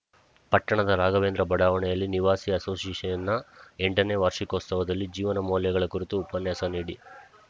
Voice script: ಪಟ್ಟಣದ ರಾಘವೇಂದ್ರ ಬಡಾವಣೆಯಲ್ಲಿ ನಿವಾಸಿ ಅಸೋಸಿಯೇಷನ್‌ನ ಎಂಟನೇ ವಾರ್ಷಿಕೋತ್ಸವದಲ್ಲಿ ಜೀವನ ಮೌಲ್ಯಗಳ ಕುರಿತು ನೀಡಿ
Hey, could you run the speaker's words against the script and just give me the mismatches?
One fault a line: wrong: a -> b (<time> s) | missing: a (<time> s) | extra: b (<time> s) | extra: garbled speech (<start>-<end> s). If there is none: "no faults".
extra: ಉಪನ್ಯಾಸ (6.2 s)